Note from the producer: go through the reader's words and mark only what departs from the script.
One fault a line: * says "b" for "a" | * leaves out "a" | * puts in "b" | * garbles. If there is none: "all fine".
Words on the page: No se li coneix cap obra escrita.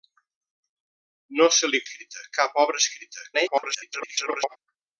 * says "escrita" for "coneix"
* garbles